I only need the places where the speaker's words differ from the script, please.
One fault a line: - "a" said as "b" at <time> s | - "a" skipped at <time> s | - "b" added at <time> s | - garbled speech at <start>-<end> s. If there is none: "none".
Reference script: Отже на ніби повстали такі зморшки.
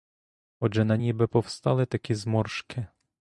none